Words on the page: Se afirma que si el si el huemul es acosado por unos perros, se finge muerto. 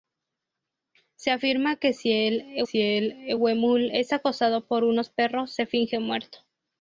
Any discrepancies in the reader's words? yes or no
no